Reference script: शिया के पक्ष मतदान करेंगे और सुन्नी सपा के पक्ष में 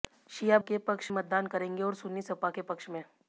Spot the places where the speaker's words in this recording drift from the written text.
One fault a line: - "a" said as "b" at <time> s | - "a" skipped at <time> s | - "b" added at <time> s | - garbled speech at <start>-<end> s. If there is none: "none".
none